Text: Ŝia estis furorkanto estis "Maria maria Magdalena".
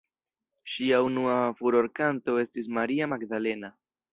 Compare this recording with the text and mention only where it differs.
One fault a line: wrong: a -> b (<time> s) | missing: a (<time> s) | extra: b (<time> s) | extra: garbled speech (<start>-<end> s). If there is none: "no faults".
wrong: estis -> unua (1.1 s)
missing: maria (3.1 s)